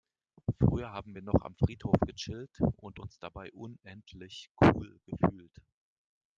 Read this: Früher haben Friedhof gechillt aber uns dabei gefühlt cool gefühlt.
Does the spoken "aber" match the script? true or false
false